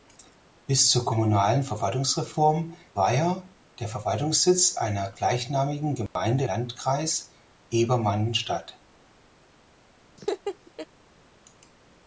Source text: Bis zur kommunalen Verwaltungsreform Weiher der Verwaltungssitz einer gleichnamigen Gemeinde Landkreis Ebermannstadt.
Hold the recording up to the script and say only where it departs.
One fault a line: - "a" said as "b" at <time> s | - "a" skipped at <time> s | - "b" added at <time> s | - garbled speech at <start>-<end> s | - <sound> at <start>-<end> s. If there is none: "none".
- dropout at 6.1-6.2 s
- laugh at 10.2-10.9 s